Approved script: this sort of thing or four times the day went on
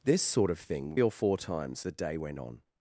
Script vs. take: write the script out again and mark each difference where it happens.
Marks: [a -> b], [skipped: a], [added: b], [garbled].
this sort of thing or four times the day went on